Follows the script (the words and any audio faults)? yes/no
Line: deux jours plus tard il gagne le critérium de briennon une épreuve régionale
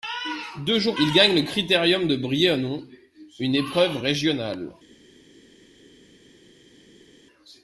no